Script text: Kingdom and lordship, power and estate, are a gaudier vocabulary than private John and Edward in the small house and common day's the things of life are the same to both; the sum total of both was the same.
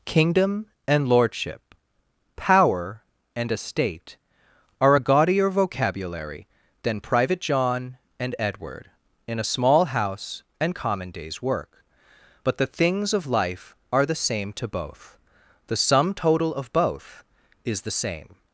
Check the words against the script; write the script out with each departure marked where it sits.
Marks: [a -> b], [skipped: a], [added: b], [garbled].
Kingdom and lordship, power and estate, are a gaudier vocabulary than private John and Edward in [the -> a] small house and common day's [added: work but] the things of life are the same to both; the sum total of both [was -> is] the same.